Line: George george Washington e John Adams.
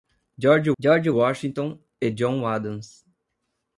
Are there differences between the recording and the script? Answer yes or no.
no